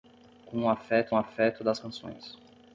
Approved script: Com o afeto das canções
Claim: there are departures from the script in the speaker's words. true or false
true